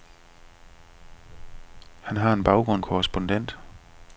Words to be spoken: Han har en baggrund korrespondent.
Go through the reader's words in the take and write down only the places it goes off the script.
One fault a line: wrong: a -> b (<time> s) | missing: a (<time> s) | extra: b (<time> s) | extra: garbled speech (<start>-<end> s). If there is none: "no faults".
no faults